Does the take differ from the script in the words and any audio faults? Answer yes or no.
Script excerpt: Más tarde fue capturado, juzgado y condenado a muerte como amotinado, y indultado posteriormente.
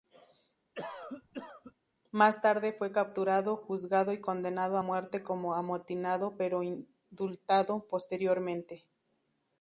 yes